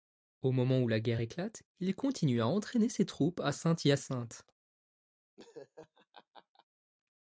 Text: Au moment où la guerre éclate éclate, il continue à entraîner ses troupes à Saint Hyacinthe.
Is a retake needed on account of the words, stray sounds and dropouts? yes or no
yes